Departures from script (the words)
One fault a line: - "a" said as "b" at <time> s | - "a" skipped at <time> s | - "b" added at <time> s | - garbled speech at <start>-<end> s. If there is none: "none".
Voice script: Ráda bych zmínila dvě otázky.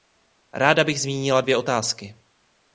none